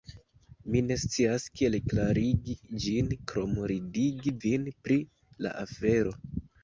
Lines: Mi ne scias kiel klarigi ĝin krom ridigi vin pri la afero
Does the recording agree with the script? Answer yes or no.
yes